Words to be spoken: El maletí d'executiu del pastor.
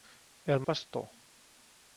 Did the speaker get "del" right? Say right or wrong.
wrong